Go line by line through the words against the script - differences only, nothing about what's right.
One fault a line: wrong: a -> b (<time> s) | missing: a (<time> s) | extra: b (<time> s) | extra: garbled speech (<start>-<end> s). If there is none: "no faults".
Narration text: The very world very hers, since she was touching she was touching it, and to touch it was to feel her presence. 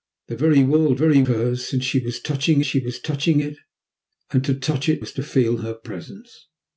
no faults